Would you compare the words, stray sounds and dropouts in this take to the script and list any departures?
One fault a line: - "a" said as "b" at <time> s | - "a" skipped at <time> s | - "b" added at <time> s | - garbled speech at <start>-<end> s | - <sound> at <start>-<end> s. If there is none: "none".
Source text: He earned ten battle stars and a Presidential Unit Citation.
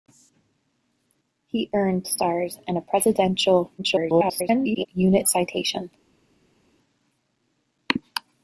- "ten battle" skipped at 2.1 s
- garbled speech at 3.8-4.9 s